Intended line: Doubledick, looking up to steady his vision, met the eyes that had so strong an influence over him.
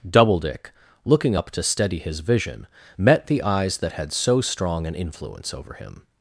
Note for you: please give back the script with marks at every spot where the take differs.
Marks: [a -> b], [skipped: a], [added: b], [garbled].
Doubledick, looking up to steady his vision, met the eyes that had so strong an influence over him.